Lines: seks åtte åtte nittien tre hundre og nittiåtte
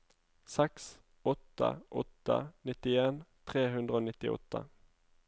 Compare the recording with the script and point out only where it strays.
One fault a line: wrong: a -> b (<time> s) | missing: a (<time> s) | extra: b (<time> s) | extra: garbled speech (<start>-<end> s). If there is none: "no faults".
no faults